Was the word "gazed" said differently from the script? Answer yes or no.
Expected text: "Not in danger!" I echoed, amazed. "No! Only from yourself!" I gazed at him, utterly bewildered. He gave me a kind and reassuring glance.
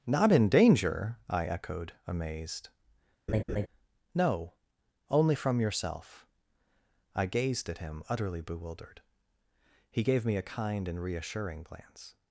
no